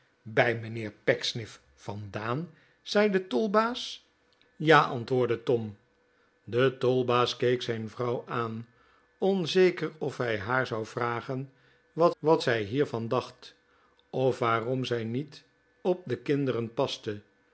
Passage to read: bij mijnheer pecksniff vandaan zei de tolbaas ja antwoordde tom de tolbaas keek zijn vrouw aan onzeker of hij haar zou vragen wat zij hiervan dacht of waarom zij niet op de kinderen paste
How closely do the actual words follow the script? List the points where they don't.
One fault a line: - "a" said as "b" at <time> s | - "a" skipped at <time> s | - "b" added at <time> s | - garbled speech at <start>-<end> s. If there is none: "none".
- "wat" added at 12.2 s